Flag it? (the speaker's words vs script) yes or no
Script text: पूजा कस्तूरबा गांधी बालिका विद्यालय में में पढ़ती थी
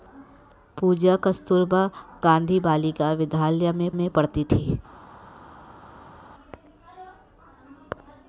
no